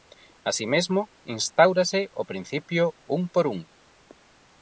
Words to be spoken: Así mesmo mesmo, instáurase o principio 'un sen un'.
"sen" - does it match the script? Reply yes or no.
no